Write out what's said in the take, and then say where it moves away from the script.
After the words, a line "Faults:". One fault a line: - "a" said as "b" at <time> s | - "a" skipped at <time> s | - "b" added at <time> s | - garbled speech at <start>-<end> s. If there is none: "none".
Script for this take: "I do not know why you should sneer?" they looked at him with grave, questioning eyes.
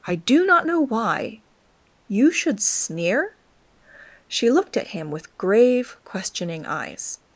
"I do not know why you should sneer?" she looked at him with grave, questioning eyes.
Faults:
- "they" said as "she" at 4.3 s